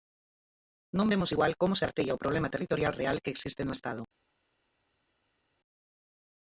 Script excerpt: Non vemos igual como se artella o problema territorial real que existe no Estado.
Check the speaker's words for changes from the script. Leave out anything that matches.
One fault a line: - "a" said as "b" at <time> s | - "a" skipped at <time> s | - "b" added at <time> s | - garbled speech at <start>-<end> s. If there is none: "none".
none